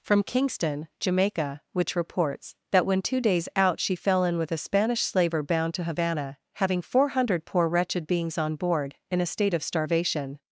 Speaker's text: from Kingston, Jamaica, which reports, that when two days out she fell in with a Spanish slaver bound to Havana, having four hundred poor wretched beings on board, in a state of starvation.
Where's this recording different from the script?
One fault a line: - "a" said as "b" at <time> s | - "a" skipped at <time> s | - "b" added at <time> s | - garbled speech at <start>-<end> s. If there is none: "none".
none